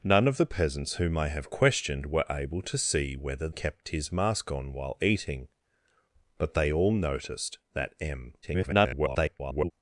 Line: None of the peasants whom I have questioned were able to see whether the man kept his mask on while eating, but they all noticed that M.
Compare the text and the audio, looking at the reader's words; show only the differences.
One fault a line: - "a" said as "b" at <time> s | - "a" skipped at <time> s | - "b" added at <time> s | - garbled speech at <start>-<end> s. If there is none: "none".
- "the man" skipped at 3.5 s
- garbled speech at 8.4-9.7 s